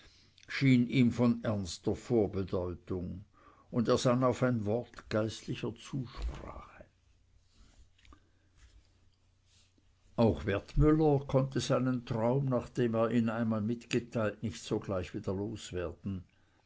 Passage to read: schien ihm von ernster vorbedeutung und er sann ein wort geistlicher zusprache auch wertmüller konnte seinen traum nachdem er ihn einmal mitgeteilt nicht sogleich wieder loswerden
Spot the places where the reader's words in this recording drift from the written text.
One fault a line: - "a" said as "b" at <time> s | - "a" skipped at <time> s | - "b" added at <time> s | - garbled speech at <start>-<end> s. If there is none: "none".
- "auf" added at 4.2 s